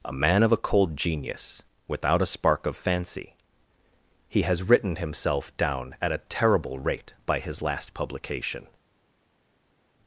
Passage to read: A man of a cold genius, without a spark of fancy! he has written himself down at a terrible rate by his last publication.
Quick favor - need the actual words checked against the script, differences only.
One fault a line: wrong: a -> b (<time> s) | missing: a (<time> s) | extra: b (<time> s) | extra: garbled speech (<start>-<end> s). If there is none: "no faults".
no faults